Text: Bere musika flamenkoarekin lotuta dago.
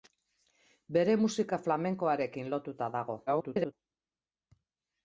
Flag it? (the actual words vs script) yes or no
yes